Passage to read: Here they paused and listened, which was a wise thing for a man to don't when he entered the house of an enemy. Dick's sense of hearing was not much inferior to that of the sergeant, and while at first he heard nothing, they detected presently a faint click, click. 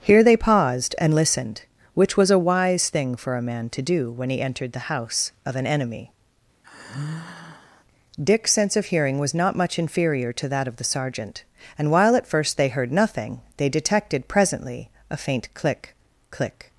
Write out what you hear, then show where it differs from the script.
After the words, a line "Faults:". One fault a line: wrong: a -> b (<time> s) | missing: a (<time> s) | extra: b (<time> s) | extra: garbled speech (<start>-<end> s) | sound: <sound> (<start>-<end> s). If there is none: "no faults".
Here they paused and listened, which was a wise thing for a man to do when he entered the house of an enemy. Dick's sense of hearing was not much inferior to that of the sergeant, and while at first they heard nothing, they detected presently a faint click, click.
Faults:
wrong: don't -> do (3.8 s)
sound: sigh (6.6-7.8 s)
wrong: he -> they (12.6 s)